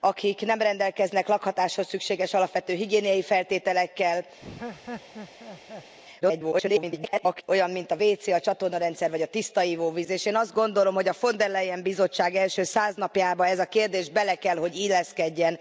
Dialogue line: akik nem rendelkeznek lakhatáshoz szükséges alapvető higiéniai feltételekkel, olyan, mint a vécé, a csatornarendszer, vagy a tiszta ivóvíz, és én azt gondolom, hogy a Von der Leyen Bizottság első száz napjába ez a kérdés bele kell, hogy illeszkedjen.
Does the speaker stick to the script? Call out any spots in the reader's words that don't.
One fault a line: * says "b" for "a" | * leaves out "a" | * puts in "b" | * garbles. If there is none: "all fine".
* garbles